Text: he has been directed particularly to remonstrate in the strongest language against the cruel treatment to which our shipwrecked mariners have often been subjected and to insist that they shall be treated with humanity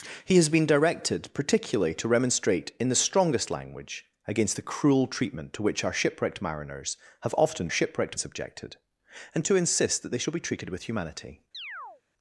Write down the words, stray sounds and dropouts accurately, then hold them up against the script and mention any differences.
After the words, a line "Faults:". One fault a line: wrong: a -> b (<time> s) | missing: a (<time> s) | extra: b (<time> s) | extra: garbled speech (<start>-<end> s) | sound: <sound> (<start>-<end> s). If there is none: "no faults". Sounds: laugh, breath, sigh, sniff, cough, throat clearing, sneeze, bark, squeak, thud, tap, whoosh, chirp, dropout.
he has been directed particularly to remonstrate in the strongest language against the cruel treatment to which our shipwrecked mariners have often shipwrecked subjected and to insist that they shall be treated with humanity
Faults:
wrong: been -> shipwrecked (7.7 s)
sound: chirp (11.5-12.0 s)